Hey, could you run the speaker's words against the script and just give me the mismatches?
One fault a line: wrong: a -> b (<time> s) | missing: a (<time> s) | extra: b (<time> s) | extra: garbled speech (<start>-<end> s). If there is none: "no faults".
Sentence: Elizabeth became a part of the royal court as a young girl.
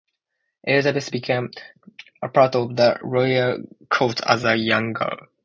no faults